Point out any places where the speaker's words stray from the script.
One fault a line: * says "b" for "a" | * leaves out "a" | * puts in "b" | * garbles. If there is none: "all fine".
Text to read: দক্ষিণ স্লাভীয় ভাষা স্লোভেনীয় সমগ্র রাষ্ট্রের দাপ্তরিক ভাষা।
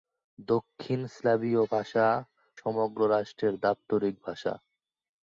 * leaves out "স্লোভেনীয়"